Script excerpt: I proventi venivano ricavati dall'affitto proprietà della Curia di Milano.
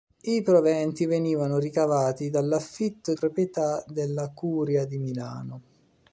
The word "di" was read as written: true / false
true